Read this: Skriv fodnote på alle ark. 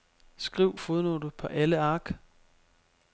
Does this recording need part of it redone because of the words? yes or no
no